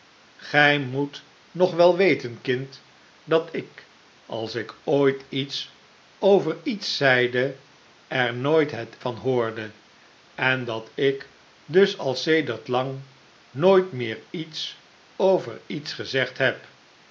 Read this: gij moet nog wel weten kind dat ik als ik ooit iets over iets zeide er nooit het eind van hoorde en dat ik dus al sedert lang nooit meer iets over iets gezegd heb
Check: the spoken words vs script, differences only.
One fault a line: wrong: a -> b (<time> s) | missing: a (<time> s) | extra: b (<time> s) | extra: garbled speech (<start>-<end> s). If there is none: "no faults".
missing: eind (9.0 s)